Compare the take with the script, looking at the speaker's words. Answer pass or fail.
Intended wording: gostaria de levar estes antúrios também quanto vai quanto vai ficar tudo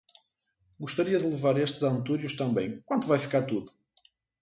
fail